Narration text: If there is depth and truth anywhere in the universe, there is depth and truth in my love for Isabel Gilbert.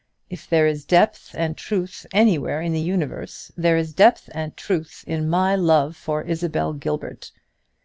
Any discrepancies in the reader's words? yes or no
no